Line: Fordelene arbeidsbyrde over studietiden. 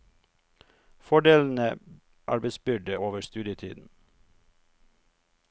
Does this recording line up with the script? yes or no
yes